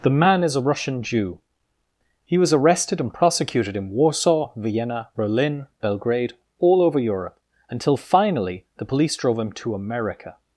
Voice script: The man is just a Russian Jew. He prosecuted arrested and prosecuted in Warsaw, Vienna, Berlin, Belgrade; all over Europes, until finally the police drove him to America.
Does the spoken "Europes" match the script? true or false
false